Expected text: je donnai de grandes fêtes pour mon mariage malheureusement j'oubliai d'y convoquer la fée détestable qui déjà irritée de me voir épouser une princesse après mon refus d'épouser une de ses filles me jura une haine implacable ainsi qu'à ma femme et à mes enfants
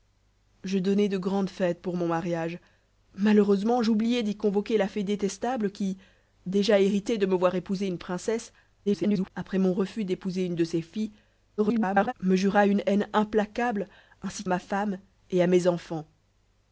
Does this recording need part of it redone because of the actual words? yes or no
yes